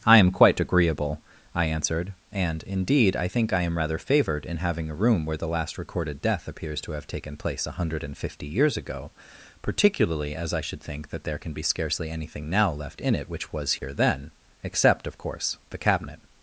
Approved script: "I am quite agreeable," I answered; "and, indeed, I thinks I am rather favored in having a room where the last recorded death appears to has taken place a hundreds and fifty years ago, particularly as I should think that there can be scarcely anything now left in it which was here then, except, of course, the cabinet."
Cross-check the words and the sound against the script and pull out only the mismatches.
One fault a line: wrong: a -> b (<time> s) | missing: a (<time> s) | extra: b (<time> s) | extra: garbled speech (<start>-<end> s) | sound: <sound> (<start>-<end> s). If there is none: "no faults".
wrong: thinks -> think (3.2 s)
wrong: has -> have (6.9 s)
wrong: hundreds -> hundred (7.7 s)
sound: dropout (13.8-13.8 s)